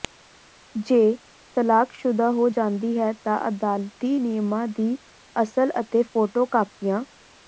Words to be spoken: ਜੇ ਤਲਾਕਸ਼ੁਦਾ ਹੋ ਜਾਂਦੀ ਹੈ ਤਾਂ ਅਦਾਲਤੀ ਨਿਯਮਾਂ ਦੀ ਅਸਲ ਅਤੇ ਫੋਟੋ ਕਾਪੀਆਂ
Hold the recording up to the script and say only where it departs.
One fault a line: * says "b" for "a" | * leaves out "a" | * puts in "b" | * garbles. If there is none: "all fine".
all fine